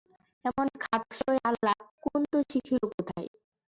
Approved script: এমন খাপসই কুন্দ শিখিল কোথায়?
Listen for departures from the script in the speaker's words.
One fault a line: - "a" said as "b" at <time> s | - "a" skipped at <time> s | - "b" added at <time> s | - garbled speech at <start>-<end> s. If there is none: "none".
- "আলাপ" added at 1.5 s